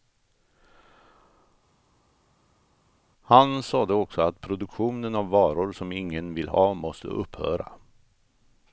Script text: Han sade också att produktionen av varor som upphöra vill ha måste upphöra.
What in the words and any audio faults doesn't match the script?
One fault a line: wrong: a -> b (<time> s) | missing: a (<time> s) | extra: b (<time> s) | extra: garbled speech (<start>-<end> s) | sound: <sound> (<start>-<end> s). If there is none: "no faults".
wrong: upphöra -> ingen (5.9 s)